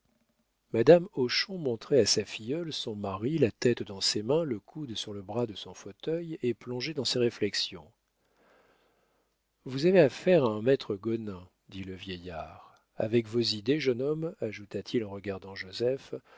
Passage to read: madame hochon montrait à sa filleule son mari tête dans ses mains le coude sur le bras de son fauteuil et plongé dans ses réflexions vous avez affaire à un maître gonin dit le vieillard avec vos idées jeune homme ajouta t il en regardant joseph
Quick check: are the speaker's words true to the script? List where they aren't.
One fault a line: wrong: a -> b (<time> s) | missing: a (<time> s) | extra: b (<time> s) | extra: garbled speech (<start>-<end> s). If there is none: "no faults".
extra: la (3.4 s)